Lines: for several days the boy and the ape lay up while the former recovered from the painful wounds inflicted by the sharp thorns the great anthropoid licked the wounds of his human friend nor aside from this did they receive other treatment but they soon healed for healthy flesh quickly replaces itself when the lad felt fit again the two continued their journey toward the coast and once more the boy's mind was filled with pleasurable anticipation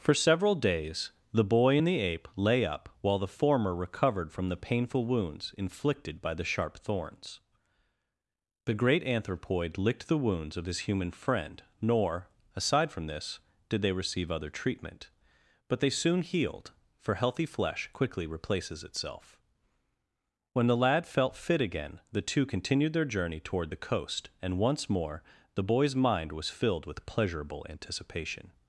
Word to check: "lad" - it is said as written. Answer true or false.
true